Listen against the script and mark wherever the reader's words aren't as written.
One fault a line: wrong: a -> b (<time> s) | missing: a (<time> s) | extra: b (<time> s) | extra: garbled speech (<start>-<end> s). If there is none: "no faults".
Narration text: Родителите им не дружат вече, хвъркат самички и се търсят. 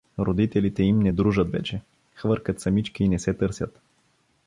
extra: не (3.1 s)